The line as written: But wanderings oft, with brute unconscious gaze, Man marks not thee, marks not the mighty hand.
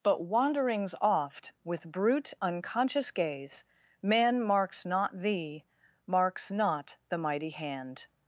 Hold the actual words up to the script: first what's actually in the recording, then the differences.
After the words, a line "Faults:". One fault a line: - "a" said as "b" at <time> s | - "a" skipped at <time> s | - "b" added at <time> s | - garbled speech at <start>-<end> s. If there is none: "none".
But wanderings oft, with brute unconscious gaze, Man marks not thee, marks not the mighty hand.
Faults:
none